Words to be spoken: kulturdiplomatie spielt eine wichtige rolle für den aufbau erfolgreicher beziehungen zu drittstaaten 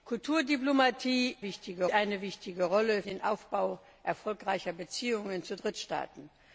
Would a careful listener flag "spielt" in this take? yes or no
yes